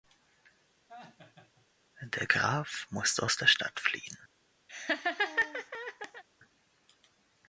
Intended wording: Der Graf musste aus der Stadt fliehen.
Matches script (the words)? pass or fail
pass